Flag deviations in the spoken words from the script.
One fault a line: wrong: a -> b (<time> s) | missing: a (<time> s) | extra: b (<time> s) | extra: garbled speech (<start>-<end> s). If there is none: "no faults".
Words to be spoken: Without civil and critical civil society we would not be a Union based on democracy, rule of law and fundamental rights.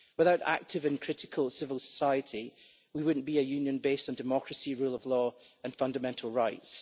wrong: civil -> active (0.5 s)